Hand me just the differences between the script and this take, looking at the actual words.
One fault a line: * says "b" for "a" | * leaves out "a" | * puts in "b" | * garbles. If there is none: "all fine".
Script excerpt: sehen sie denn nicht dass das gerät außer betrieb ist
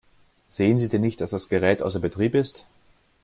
all fine